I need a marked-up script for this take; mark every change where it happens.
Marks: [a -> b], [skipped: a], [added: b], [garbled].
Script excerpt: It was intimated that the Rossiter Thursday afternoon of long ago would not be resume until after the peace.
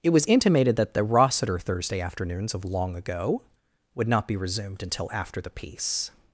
It was intimated that the Rossiter Thursday [afternoon -> afternoons] of long ago would not be [resume -> resumed] until after the peace.